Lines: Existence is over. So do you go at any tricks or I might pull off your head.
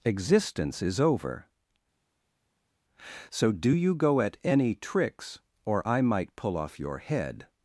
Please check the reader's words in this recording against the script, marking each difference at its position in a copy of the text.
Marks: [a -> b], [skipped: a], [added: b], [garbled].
Existence is over. So do you go at any tricks or I might pull off your head.